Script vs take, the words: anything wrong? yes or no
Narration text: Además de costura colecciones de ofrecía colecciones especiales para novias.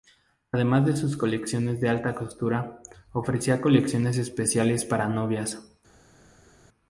yes